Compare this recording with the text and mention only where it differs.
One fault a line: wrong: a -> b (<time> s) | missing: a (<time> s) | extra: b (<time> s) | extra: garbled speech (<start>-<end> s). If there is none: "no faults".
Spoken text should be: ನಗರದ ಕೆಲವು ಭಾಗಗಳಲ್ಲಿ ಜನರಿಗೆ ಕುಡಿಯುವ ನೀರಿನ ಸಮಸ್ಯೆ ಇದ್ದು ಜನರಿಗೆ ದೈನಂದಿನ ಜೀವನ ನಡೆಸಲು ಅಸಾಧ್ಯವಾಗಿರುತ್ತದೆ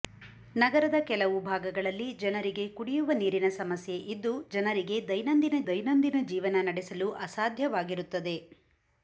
extra: ದೈನಂದಿನ (5.7 s)